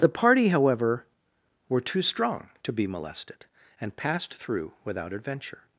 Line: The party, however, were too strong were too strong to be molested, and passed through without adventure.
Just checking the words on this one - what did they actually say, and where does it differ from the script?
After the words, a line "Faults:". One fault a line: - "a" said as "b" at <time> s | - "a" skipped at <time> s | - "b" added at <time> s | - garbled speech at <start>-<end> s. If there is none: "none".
The party, however, were too strong to be molested, and passed through without adventure.
Faults:
- "were too strong" skipped at 2.5 s